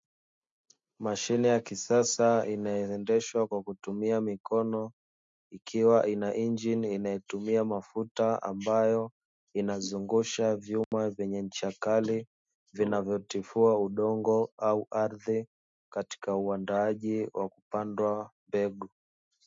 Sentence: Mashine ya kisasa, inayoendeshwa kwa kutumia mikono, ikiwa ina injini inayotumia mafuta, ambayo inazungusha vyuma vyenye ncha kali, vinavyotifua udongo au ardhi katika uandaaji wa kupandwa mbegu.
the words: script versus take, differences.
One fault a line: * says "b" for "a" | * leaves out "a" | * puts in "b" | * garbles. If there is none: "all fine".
all fine